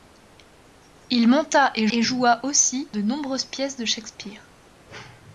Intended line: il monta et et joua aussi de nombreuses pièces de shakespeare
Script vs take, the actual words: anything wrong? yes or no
no